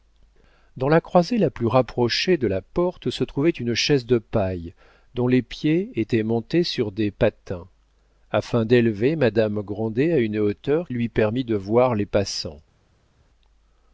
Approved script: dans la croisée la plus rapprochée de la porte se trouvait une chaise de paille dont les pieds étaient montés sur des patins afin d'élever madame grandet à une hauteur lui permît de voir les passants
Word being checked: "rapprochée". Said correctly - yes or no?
yes